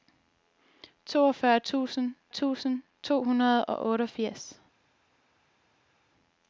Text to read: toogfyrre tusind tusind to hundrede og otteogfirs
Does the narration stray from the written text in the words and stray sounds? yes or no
no